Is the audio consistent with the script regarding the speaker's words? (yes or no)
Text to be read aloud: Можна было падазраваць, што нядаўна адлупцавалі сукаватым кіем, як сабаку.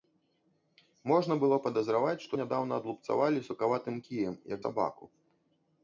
yes